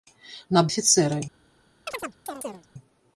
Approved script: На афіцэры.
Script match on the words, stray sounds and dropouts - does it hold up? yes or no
no